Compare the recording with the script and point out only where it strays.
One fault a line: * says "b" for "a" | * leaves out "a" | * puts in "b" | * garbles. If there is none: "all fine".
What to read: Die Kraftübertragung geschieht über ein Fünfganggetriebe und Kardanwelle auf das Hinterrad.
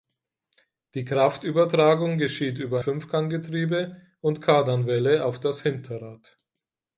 * leaves out "ein"